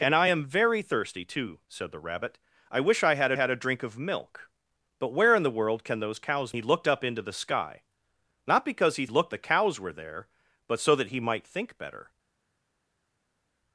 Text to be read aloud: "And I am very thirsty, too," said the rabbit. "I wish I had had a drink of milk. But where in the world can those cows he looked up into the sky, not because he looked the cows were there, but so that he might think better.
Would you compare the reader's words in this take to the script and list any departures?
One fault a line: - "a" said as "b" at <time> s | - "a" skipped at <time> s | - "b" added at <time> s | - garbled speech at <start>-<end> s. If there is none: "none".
none